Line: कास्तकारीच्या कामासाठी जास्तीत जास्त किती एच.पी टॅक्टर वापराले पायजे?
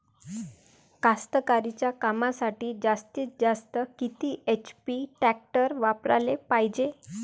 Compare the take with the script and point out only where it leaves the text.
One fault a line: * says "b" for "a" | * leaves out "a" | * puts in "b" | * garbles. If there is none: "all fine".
all fine